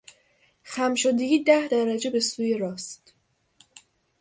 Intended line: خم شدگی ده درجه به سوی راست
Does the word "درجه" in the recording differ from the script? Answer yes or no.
no